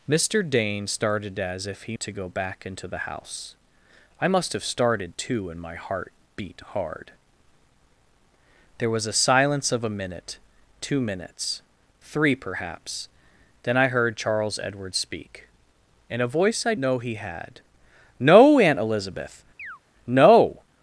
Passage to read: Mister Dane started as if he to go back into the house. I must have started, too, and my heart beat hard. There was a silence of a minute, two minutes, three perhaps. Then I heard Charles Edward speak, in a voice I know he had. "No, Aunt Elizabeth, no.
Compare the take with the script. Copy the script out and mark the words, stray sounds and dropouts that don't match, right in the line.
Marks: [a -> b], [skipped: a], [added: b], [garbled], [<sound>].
Mister Dane started as if he to go back into the house. I must have started, too, and my heart beat hard. There was a silence of a minute, two minutes, three perhaps. Then I heard Charles Edward speak, in a voice I know he had. "No, Aunt Elizabeth, [chirp] no.